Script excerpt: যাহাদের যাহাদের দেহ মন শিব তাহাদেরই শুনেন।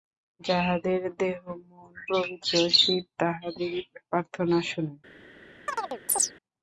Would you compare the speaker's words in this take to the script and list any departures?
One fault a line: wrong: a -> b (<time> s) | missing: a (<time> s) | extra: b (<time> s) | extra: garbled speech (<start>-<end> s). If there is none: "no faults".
missing: যাহাদের (1.0 s)
extra: পবিত্র (2.1 s)
extra: প্রার্থনা (4.0 s)